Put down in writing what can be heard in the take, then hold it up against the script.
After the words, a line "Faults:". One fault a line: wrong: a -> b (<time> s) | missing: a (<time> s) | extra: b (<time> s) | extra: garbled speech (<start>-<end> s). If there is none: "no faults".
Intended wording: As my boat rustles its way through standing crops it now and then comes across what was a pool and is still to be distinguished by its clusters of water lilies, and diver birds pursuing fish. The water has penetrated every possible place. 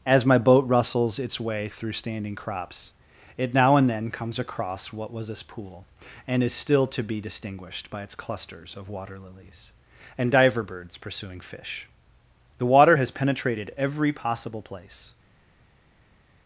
As my boat rustles its way through standing crops it now and then comes across what was this pool and is still to be distinguished by its clusters of water lilies, and diver birds pursuing fish. The water has penetrated every possible place.
Faults:
wrong: a -> this (5.3 s)